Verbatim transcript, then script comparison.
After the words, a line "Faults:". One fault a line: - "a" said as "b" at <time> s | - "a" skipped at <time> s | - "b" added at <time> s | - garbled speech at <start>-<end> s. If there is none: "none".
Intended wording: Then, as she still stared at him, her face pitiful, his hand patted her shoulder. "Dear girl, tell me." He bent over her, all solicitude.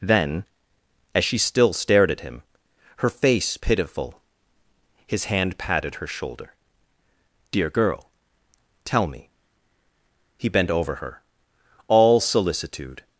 Then, as she still stared at him, her face pitiful, his hand patted her shoulder. "Dear girl, tell me." He bent over her, all solicitude.
Faults:
none